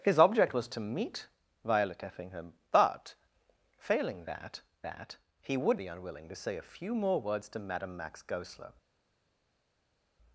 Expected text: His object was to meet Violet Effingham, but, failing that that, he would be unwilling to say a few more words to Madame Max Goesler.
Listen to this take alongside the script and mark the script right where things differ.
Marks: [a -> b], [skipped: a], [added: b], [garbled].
His object was to meet Violet Effingham, but, failing that that, he would be unwilling to say a few more words to Madame Max Goesler.